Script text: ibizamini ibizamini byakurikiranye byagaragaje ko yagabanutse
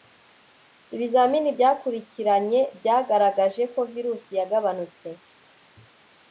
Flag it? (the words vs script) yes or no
yes